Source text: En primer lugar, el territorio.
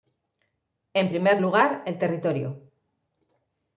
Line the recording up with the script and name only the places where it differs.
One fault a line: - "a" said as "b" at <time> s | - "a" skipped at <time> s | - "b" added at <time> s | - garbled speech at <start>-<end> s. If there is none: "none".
none